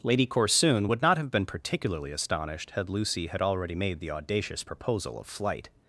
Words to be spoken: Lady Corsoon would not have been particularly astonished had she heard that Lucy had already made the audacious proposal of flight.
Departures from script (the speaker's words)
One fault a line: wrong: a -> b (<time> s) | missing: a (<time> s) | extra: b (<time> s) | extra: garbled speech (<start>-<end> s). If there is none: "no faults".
missing: she heard that (2.9 s)